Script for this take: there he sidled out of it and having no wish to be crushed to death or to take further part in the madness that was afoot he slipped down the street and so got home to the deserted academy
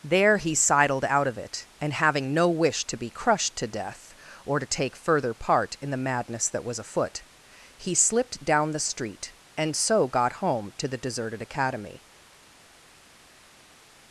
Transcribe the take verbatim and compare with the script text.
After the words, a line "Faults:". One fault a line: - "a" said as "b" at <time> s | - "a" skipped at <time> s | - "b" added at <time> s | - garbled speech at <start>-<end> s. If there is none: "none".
there he sidled out of it and having no wish to be crushed to death or to take further part in the madness that was afoot he slipped down the street and so got home to the deserted academy
Faults:
none